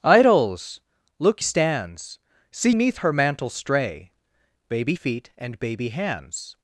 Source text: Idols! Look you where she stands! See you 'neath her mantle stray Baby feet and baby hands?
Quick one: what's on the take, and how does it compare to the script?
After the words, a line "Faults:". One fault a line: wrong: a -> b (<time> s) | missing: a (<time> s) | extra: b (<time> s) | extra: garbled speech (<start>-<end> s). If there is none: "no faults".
Idols! Look stands! See 'neath her mantle stray Baby feet and baby hands?
Faults:
missing: you where she (1.4 s)
missing: you (2.7 s)